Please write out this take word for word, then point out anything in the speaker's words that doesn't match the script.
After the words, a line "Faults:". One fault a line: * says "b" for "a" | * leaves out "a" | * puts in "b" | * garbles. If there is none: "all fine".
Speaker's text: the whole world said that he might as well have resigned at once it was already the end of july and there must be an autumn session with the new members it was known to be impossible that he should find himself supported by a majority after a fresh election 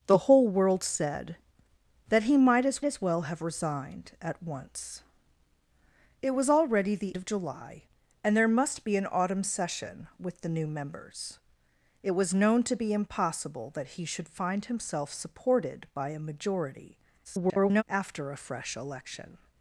the whole world said that he might as as well have resigned at once it was already the of july and there must be an autumn session with the new members it was known to be impossible that he should find himself supported by a majority [garbled] after a fresh election
Faults:
* puts in "as"
* leaves out "end"
* garbles